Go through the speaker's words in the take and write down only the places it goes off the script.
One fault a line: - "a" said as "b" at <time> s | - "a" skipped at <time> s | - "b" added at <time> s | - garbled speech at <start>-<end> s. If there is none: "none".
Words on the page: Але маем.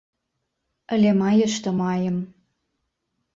- "мае што" added at 1.2 s